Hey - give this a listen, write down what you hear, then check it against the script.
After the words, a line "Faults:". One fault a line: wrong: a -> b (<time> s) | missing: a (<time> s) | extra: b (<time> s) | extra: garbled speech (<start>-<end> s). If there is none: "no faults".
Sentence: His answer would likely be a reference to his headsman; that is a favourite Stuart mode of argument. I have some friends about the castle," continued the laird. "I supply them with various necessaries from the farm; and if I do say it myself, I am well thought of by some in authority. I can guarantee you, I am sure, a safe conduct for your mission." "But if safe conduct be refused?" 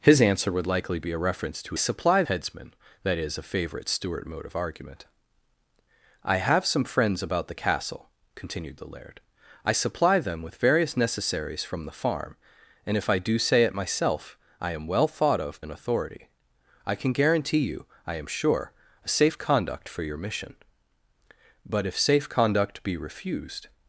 His answer would likely be a reference to supply headsman; that is a favourite Stuart mode of argument. I have some friends about the castle," continued the laird. "I supply them with various necessaries from the farm; and if I do say it myself, I am well thought of in authority. I can guarantee you, I am sure, a safe conduct for your mission." "But if safe conduct be refused?"
Faults:
wrong: his -> supply (1.7 s)
missing: by some (15.6 s)